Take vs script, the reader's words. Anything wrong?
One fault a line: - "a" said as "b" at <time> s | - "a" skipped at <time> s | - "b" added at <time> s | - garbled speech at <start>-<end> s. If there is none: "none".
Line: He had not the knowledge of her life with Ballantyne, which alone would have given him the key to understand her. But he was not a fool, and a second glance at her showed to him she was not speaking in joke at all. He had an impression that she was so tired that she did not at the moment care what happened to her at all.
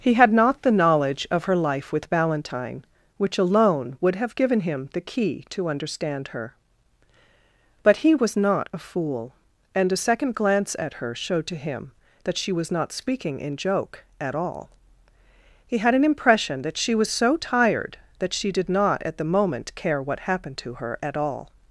- "that" added at 12.2 s